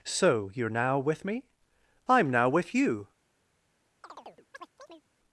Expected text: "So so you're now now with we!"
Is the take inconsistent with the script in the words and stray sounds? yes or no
yes